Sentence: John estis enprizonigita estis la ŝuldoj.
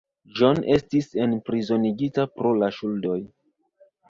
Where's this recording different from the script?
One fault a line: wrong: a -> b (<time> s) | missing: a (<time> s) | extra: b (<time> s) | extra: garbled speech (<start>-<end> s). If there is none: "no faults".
wrong: estis -> pro (2.4 s)